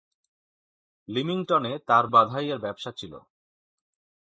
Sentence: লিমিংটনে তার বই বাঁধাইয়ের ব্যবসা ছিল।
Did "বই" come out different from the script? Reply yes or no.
yes